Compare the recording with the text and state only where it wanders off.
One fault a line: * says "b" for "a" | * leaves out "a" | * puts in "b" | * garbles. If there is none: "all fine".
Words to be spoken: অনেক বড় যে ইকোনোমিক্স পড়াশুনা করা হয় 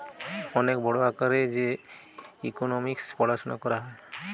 * puts in "আকারে"